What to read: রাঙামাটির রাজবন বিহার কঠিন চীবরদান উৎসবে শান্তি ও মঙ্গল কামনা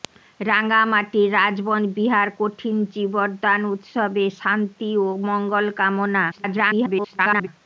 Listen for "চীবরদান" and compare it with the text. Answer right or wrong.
right